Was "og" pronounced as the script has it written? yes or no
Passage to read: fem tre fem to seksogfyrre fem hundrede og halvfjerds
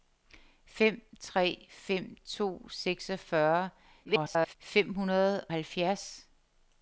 no